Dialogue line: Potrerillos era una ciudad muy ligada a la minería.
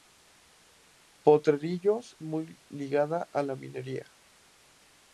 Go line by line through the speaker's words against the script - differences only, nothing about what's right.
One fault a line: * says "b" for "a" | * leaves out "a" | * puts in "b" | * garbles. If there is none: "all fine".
* leaves out "era una ciudad"